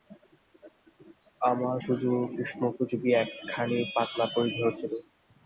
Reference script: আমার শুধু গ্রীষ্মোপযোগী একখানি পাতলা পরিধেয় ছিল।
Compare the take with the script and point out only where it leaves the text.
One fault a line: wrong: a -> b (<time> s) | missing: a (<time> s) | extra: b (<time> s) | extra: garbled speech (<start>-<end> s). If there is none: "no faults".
no faults